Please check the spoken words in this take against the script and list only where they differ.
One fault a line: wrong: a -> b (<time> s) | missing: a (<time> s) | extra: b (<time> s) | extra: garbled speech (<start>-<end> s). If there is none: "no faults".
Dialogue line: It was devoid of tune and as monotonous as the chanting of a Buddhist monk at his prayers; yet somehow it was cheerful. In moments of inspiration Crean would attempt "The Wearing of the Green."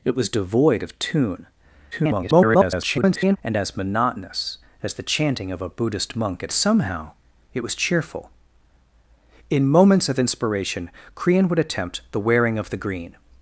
extra: garbled speech (1.9-3.4 s)
missing: his prayers yet (6.5 s)